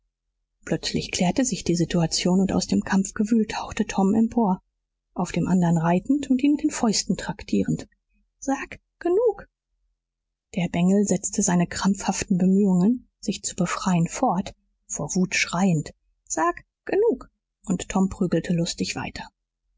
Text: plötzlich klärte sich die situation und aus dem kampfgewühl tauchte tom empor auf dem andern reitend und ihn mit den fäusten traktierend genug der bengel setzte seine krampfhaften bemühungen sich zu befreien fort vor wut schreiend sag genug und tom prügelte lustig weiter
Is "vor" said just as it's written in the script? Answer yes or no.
yes